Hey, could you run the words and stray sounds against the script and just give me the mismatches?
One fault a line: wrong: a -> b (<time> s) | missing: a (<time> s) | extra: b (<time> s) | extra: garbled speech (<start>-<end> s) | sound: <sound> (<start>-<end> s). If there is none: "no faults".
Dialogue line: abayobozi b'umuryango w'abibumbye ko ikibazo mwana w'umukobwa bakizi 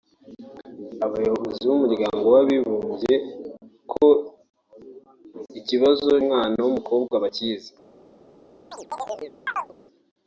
sound: chirp (8.7-9.7 s)